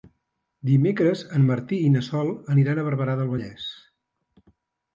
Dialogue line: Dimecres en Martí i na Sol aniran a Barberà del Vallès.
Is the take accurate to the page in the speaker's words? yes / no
yes